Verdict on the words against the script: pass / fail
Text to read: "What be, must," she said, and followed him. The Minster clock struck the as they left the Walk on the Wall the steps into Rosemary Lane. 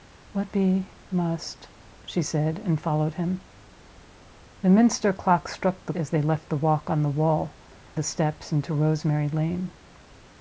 pass